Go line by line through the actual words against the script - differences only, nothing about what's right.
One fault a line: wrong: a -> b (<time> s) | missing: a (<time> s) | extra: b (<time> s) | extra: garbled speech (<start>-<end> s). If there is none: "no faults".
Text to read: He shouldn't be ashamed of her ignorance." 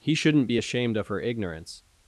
no faults